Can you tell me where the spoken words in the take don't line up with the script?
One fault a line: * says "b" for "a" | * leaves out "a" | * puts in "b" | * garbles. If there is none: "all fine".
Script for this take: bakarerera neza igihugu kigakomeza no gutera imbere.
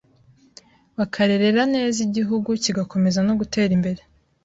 all fine